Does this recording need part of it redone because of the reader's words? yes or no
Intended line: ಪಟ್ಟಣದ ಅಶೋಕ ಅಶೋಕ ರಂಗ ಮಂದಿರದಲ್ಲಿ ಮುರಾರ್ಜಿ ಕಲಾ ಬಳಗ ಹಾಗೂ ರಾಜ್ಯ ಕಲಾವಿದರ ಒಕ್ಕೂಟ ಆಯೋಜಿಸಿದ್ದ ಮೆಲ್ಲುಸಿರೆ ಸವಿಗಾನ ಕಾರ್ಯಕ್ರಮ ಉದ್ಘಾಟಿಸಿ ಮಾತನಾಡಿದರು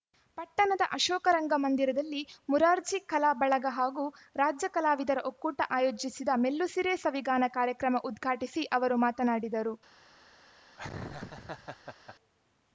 yes